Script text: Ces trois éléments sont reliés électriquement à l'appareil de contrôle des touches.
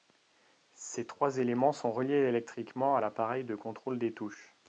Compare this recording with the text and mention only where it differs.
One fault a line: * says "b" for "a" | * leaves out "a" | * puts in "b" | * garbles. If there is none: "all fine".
all fine